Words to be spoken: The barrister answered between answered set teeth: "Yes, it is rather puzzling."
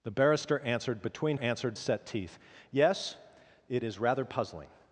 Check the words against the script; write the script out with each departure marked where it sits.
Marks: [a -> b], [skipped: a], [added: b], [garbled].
The barrister answered between answered set teeth: "Yes, it is rather puzzling."